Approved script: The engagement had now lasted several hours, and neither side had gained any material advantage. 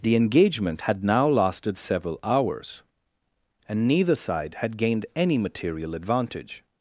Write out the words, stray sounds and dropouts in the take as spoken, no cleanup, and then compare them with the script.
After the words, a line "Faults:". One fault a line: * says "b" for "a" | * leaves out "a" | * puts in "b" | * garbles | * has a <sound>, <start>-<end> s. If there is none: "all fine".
The engagement had now lasted several hours, and neither side had gained any material advantage.
Faults:
all fine